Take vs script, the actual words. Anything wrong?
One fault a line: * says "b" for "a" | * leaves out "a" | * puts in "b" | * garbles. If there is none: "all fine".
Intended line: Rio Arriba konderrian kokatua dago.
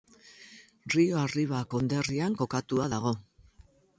all fine